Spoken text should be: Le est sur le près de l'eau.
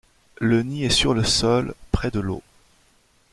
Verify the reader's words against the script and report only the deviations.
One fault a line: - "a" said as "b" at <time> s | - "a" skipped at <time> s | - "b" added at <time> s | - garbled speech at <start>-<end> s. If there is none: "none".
- "nid" added at 0.6 s
- "sol" added at 1.2 s